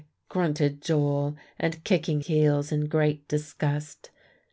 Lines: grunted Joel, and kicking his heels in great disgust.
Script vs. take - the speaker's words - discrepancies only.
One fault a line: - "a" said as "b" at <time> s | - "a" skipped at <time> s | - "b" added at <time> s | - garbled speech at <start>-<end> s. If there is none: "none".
- "his" skipped at 2.2 s